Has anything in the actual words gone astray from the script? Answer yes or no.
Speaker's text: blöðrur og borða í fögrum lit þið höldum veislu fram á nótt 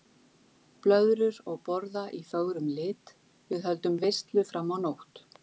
yes